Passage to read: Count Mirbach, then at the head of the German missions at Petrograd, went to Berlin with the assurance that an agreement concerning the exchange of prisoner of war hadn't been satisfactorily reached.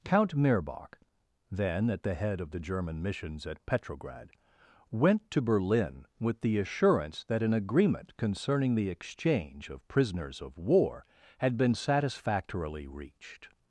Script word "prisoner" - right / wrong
wrong